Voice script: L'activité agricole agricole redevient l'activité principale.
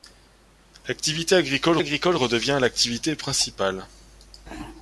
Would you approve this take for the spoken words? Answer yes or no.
yes